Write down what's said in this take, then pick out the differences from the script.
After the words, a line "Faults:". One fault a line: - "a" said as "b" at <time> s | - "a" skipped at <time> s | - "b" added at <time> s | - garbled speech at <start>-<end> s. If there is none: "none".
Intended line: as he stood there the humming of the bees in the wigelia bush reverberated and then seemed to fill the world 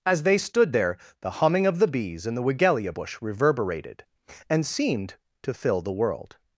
as they stood there the humming of the bees in the wigelia bush reverberated and seemed to fill the world
Faults:
- "he" said as "they" at 0.2 s
- "then" skipped at 4.6 s